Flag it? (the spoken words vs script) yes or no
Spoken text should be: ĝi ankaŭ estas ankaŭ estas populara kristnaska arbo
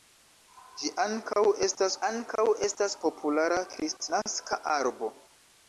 no